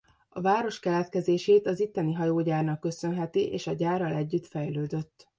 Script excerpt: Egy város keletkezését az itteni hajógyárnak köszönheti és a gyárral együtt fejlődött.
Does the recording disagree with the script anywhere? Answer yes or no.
yes